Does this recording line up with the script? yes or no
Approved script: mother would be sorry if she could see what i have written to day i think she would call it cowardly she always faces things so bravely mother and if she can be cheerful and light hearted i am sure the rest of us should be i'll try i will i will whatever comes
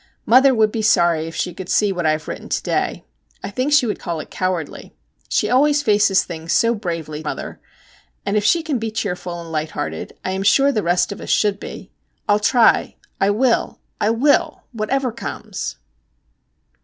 yes